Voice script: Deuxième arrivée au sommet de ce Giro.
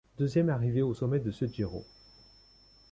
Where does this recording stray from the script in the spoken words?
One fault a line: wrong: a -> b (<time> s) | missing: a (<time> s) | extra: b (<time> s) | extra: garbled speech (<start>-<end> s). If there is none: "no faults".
no faults